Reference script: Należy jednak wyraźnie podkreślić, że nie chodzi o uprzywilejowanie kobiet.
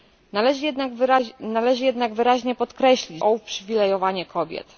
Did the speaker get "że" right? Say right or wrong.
wrong